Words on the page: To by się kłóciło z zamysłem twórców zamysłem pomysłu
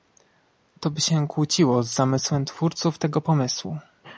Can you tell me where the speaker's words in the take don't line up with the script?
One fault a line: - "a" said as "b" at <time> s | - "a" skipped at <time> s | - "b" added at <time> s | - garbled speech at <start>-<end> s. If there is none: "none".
- "zamysłem" said as "tego" at 3.0 s